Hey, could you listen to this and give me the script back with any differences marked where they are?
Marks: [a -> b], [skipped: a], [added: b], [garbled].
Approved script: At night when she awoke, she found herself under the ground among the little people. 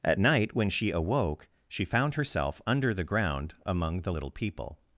At night when she awoke, she found herself under the ground among the little people.